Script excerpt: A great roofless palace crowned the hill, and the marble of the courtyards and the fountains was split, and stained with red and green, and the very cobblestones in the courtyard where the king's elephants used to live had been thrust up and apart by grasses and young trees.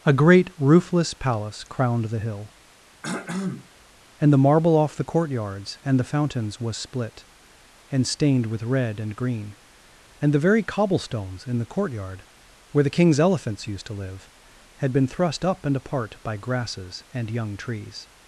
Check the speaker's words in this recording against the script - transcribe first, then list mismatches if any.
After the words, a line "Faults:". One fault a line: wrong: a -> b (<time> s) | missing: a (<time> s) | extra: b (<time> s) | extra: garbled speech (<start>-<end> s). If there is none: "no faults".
A great roofless palace crowned the hill, and the marble off the courtyards and the fountains was split, and stained with red and green, and the very cobblestones in the courtyard where the king's elephants used to live had been thrust up and apart by grasses and young trees.
Faults:
wrong: of -> off (4.7 s)